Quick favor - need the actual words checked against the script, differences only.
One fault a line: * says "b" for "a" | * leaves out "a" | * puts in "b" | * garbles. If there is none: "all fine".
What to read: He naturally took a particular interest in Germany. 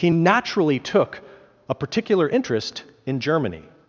all fine